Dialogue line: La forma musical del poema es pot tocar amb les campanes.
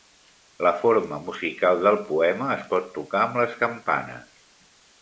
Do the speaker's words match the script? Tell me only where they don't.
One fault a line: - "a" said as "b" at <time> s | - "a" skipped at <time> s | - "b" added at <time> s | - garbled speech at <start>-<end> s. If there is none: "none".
none